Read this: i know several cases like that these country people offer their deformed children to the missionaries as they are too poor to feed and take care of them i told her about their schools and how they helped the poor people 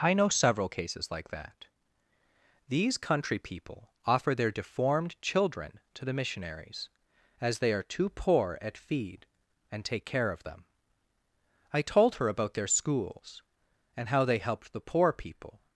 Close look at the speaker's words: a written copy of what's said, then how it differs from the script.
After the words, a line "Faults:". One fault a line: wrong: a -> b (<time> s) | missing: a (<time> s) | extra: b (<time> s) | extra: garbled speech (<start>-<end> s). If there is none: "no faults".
i know several cases like that these country people offer their deformed children to the missionaries as they are too poor at feed and take care of them i told her about their schools and how they helped the poor people
Faults:
wrong: to -> at (8.6 s)